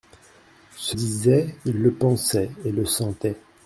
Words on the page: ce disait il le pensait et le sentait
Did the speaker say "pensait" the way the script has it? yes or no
yes